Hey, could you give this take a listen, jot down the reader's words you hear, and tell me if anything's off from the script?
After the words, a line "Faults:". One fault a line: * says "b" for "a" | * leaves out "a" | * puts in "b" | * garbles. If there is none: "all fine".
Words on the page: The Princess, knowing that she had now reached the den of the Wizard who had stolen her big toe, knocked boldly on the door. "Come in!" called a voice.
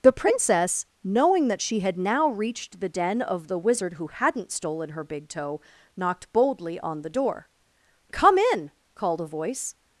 The Princess, knowing that she had now reached the den of the Wizard who hadn't stolen her big toe, knocked boldly on the door. "Come in!" called a voice.
Faults:
* says "hadn't" for "had"